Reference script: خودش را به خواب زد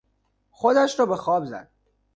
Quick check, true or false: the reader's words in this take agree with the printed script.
true